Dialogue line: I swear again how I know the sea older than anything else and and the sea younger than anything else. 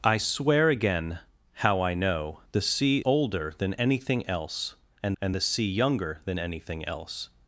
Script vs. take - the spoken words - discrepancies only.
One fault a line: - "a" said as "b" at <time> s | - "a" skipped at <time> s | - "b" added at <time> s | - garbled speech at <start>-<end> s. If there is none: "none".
none